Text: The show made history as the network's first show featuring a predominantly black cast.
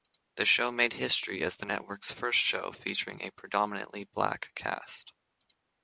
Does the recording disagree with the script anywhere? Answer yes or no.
no